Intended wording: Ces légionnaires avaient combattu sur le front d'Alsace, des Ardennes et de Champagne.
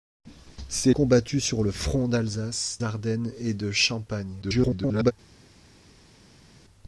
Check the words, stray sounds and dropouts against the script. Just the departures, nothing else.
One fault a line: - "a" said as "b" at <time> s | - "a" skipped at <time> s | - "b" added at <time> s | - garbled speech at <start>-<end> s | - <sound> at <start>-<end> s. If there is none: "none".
- "légionnaires avaient" skipped at 0.9 s
- "des" skipped at 2.8 s
- garbled speech at 4.4-5.1 s